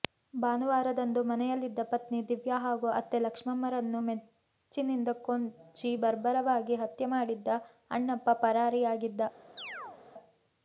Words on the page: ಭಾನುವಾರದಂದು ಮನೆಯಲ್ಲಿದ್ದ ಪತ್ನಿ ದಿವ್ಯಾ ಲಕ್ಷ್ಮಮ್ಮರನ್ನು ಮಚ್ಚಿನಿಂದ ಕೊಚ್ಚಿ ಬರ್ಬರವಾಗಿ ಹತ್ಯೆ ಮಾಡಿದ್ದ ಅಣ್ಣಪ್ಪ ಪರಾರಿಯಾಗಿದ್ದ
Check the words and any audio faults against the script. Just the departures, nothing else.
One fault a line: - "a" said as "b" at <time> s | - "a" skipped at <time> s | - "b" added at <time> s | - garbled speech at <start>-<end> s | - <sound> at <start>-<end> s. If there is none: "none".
- "ಹಾಗೂ ಅತ್ತೆ" added at 2.6 s
- chirp at 9.6-10.0 s